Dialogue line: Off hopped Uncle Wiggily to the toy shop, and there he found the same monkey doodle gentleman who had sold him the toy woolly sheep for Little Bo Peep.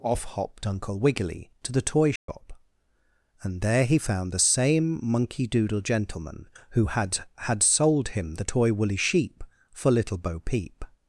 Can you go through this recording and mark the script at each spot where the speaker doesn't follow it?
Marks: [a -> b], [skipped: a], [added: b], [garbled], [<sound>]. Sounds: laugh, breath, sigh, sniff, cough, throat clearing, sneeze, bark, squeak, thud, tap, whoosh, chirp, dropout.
Off hopped Uncle Wiggily to the toy shop, [dropout] and there he found the same monkey doodle gentleman who had [added: had] sold him the toy woolly sheep for Little Bo Peep.